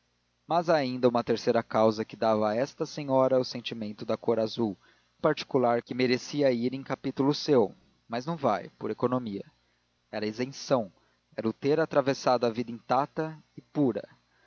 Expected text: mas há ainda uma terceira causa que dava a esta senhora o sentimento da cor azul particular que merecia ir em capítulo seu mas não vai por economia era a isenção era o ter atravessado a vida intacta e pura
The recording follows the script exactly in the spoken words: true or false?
true